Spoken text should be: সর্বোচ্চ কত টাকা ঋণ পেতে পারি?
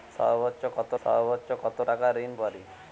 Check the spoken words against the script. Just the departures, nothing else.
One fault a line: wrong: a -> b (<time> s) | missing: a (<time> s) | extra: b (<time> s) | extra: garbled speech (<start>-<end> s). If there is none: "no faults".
extra: সর্বোচ্চ কত (1.0 s)
missing: পেতে (2.3 s)